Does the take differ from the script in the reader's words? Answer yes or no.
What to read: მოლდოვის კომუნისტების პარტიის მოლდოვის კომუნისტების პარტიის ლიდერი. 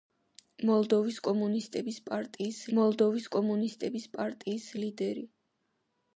no